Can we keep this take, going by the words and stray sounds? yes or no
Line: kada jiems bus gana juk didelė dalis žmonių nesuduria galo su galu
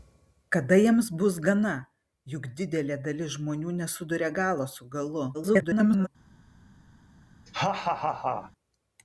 no